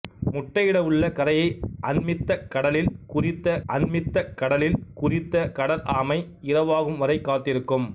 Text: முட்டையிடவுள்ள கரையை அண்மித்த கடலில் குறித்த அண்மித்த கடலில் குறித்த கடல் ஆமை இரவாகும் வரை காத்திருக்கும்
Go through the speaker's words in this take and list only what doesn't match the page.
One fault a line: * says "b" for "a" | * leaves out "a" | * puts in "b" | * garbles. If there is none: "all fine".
all fine